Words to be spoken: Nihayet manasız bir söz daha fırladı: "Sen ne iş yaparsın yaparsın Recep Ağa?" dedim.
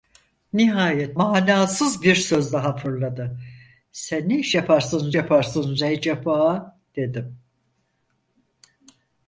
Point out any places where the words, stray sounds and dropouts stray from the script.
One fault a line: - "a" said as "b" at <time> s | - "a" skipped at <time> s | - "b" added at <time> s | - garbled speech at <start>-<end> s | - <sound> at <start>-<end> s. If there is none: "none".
none